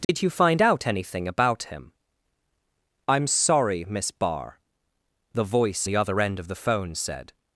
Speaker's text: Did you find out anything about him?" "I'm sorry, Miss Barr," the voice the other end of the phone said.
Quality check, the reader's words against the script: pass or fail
pass